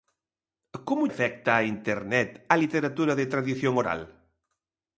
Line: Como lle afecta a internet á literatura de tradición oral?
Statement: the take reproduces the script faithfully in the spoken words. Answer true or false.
false